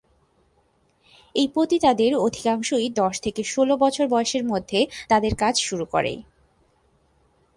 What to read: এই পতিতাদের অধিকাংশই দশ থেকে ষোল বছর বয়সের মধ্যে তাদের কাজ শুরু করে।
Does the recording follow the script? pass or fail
pass